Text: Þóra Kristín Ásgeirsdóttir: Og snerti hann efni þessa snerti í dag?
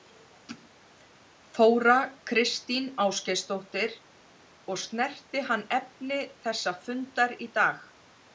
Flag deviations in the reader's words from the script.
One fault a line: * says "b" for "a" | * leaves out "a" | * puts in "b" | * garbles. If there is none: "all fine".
* says "fundar" for "snerti"